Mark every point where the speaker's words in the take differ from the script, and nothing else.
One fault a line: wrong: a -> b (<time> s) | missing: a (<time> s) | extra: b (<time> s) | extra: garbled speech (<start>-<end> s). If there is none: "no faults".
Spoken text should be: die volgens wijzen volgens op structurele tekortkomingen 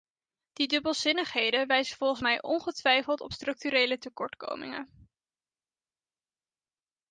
wrong: volgens -> dubbelzinnigheden (0.7 s)
extra: mij ongetwijfeld (2.2 s)